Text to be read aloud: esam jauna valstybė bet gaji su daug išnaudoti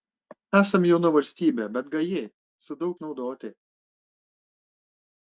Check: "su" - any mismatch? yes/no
no